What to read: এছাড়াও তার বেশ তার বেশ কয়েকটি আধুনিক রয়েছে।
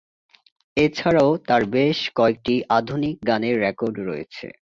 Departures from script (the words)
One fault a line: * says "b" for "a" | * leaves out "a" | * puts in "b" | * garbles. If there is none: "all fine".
* says "কয়েকটি আধুনিক গানের রেকর্ড" for "তার বেশ কয়েকটি আধুনিক"